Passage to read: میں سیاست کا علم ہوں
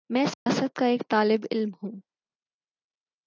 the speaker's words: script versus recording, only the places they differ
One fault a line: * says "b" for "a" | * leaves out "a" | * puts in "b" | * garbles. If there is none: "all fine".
* puts in "ایک طالب"